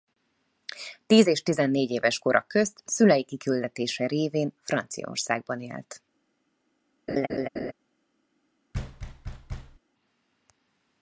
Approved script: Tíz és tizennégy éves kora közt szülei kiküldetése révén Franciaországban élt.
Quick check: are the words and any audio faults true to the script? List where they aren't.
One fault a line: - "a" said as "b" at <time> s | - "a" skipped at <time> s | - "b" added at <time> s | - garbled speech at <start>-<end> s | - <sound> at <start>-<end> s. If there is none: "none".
- laugh at 7.1-7.7 s
- thud at 8.7-9.8 s